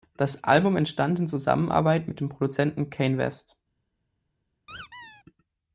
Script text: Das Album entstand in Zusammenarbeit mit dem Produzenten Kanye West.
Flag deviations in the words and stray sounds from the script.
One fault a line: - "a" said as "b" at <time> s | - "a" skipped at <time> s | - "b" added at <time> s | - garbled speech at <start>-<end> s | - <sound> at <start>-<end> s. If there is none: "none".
- squeak at 4.7-5.2 s